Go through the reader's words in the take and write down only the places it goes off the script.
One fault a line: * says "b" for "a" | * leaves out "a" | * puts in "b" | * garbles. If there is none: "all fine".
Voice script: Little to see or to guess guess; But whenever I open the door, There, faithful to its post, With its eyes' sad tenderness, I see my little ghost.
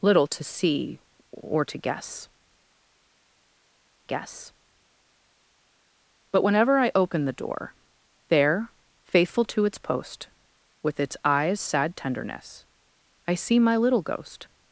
all fine